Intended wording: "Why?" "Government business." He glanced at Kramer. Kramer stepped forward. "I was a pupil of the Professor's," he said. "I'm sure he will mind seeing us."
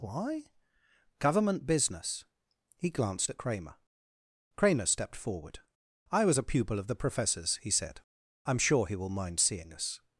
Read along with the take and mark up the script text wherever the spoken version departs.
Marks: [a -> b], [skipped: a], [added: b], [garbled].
"Why?" "Government business." He glanced at Kramer. Kramer stepped forward. "I was a pupil of the Professor's," he said. "I'm sure he will mind seeing us."